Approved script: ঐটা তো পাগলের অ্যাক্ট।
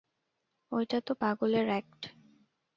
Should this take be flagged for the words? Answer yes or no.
no